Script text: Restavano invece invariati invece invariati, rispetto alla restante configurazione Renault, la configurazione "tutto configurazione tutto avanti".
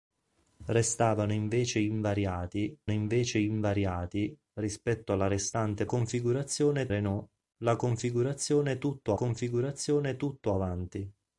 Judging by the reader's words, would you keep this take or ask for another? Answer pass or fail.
pass